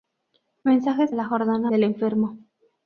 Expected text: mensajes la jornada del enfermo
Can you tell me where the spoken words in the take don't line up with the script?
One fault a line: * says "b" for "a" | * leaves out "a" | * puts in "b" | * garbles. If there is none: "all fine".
all fine